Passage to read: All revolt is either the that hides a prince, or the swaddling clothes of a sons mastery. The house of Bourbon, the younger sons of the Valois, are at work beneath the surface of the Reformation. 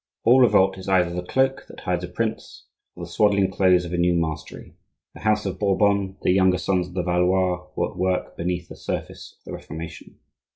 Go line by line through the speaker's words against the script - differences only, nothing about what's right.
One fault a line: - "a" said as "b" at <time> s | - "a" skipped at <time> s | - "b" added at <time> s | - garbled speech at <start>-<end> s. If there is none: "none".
- "cloak" added at 1.2 s
- "sons" said as "new" at 4.0 s
- "are" said as "were" at 7.8 s